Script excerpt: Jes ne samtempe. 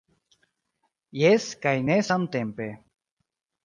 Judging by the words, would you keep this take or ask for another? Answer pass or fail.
fail